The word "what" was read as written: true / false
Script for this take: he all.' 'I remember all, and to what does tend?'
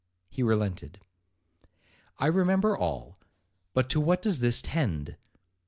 true